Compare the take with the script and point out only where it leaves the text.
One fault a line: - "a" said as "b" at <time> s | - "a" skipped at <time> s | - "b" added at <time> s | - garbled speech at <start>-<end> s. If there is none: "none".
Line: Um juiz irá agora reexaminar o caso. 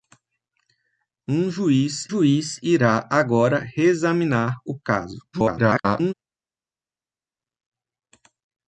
- "juiz" added at 2.1 s
- garbled speech at 5.3-6.1 s